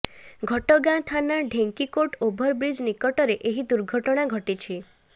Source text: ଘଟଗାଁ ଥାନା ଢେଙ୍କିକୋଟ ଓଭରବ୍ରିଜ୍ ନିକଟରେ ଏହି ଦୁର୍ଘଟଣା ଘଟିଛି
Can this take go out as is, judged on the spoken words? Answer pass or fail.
pass